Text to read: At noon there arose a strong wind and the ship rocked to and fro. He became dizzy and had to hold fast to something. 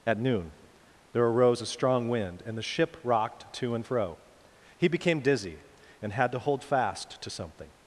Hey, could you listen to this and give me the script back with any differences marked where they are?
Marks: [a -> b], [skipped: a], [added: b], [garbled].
At noon there arose a strong wind and the ship rocked to and fro. He became dizzy and had to hold fast to something.